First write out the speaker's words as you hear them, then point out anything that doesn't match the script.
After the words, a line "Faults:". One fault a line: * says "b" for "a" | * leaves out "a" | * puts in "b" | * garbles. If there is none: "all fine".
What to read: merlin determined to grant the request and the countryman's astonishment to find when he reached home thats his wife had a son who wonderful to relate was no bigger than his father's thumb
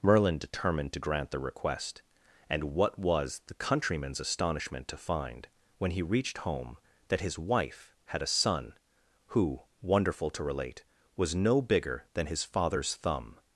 merlin determined to grant the request and what was the countryman's astonishment to find when he reached home that his wife had a son who wonderful to relate was no bigger than his father's thumb
Faults:
* puts in "what was"
* says "that" for "thats"